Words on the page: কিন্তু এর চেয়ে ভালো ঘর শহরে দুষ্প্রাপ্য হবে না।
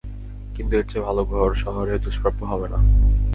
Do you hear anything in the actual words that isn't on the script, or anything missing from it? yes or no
no